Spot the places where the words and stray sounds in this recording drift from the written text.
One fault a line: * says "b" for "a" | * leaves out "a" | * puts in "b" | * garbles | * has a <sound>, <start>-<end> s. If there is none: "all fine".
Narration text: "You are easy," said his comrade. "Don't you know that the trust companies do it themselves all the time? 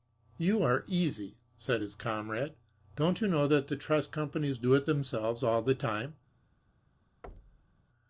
* has a thud, 7.2-7.8 s